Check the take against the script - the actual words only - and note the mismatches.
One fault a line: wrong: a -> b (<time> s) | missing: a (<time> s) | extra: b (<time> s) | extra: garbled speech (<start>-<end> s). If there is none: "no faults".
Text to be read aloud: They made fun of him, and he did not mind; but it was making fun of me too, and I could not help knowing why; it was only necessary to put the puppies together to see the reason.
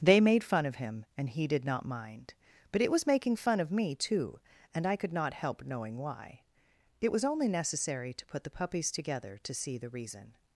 no faults